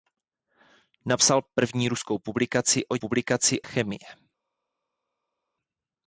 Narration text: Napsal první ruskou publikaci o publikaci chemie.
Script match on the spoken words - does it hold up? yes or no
yes